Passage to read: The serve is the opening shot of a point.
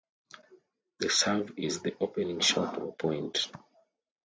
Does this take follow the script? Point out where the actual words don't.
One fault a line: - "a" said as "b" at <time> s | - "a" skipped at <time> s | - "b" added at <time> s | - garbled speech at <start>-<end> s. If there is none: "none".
none